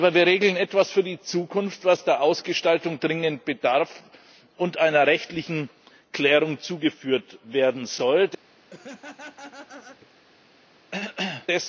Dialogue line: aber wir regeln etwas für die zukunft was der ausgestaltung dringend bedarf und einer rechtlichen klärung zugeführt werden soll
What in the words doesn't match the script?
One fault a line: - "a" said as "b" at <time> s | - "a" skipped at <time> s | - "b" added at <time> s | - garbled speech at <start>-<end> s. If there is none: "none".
none